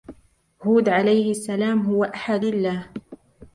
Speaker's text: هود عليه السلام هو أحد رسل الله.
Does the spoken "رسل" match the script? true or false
false